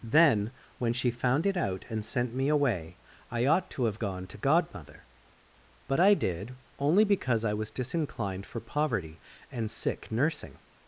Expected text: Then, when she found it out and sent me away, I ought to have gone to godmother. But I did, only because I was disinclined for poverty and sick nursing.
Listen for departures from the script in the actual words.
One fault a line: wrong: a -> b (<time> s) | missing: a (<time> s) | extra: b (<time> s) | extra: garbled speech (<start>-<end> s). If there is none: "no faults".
no faults